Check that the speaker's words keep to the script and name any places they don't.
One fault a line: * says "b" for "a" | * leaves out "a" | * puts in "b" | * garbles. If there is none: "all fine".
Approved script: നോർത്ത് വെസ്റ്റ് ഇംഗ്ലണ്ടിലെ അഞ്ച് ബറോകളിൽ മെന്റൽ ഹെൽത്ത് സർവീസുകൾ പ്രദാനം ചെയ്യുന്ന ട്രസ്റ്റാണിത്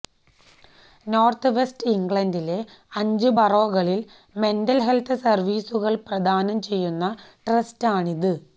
all fine